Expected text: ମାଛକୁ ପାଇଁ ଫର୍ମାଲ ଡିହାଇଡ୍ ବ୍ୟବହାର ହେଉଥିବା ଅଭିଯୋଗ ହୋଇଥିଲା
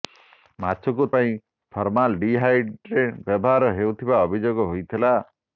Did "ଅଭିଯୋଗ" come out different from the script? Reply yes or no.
no